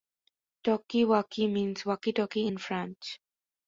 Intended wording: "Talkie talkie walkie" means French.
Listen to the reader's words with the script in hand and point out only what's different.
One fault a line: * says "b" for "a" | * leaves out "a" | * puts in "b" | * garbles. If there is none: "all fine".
* says "walkie means" for "talkie"
* says "talkie in" for "means"